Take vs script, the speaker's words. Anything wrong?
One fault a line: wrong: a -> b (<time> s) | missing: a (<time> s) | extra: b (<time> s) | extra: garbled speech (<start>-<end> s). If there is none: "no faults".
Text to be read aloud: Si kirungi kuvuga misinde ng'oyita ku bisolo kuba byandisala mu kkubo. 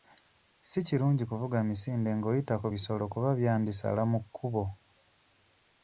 no faults